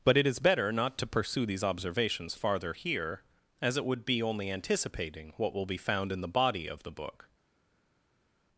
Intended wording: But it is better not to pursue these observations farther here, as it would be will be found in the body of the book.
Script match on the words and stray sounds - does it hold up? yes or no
no